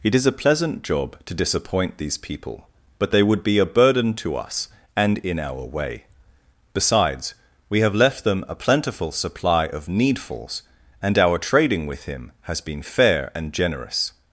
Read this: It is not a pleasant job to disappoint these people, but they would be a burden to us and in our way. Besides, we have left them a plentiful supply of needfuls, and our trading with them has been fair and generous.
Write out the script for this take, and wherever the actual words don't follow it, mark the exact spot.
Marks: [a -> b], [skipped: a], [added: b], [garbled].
It is [skipped: not] a pleasant job to disappoint these people, but they would be a burden to us and in our way. Besides, we have left them a plentiful supply of needfuls, and our trading with [them -> him] has been fair and generous.